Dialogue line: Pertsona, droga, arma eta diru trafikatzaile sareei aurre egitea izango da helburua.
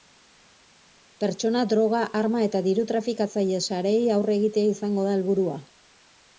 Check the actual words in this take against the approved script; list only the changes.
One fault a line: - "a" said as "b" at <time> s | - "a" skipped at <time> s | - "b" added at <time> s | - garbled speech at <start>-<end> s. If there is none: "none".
none